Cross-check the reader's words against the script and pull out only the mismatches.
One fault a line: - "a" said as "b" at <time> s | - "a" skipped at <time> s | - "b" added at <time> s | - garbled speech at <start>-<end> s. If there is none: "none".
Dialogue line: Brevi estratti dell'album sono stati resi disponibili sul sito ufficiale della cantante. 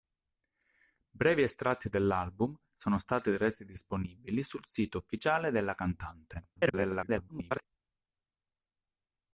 - garbled speech at 6.6-7.6 s